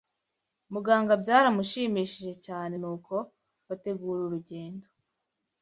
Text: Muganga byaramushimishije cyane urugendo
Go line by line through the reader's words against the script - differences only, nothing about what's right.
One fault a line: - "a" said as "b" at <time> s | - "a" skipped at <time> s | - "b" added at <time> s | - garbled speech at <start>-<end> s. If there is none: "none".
- "nuko bategura" added at 2.8 s